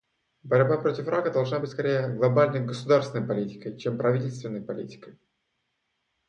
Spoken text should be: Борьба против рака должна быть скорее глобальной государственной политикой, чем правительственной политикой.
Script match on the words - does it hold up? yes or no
yes